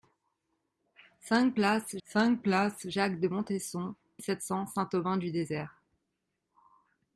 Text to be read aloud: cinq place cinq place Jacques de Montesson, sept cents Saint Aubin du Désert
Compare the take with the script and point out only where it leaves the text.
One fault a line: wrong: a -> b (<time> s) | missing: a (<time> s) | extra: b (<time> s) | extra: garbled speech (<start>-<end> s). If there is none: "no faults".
no faults